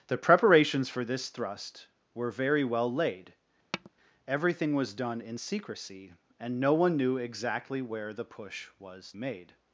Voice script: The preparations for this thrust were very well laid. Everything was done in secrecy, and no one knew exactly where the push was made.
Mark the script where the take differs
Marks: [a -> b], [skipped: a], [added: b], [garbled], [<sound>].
The preparations for this thrust were very well laid. [tap] Everything was done in secrecy, and no one knew exactly where the push was made.